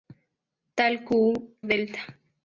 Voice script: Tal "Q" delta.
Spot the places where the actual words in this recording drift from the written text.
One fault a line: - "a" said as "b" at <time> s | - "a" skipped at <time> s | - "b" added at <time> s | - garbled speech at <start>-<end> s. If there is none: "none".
none